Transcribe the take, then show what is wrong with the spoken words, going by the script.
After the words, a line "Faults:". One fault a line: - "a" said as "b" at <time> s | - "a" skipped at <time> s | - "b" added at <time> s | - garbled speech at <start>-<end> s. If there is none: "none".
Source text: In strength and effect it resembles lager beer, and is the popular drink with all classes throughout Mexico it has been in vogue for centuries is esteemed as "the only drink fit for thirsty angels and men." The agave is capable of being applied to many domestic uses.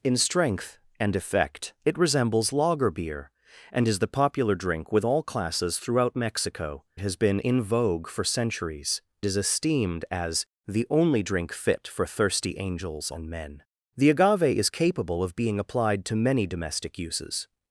In strength and effect it resembles lager beer, and is the popular drink with all classes throughout Mexico it has been in vogue for centuries is esteemed as "the only drink fit for thirsty angels and men." The agave is capable of being applied to many domestic uses.
Faults:
none